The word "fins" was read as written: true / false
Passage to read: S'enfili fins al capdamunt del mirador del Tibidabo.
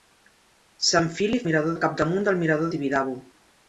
false